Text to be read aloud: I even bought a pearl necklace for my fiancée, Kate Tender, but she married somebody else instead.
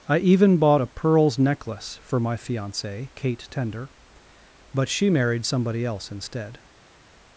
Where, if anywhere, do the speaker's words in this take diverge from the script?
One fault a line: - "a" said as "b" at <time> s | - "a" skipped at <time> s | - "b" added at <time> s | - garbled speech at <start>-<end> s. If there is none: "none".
- "pearl" said as "pearls" at 0.9 s